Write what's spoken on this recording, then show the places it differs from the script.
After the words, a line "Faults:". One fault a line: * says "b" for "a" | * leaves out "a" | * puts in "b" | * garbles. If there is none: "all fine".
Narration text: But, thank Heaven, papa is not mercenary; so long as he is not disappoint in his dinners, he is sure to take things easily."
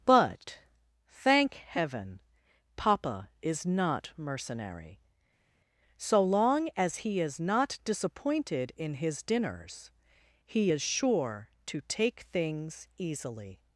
But, thank Heaven, papa is not mercenary; so long as he is not disappointed in his dinners, he is sure to take things easily."
Faults:
* says "disappointed" for "disappoint"